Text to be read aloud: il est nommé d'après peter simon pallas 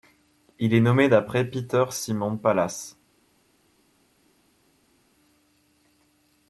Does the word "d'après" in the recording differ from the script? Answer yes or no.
no